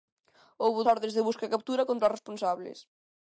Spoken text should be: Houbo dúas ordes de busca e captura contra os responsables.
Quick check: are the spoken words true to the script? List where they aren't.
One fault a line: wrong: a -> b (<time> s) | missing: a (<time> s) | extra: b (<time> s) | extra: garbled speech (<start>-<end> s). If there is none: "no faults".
missing: dúas (0.8 s)